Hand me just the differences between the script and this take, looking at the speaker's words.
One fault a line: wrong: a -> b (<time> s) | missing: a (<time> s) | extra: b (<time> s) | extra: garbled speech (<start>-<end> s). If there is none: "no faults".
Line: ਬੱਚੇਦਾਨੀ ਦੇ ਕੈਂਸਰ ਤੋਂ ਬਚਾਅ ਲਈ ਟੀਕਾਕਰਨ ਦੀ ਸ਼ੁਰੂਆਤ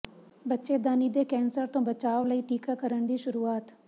no faults